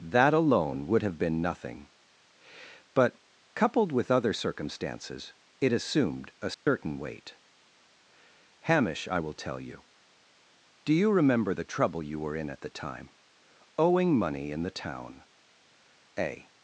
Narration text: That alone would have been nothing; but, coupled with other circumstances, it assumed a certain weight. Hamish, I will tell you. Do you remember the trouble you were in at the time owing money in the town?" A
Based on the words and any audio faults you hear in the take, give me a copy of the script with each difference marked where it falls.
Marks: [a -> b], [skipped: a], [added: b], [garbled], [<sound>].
That alone would have been nothing; but, coupled with other circumstances, it assumed a certain [dropout] weight. Hamish, I will tell you. Do you remember the trouble you were in at the time owing money in the town?" A